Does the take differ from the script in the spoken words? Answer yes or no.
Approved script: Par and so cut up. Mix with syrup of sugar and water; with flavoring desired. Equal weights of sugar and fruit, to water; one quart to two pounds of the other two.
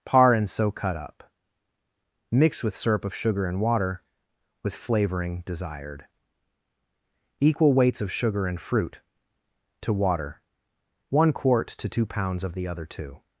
no